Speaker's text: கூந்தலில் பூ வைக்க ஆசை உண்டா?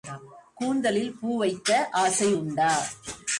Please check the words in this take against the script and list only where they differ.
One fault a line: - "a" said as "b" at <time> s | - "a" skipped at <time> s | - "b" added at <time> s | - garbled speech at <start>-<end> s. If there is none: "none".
none